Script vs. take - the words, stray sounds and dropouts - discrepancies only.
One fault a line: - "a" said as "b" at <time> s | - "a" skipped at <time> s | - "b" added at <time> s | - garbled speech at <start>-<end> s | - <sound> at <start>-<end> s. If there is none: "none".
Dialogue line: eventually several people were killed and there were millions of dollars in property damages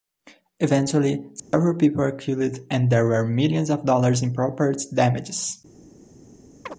- dropout at 1.4-1.5 s
- chirp at 6.7-6.8 s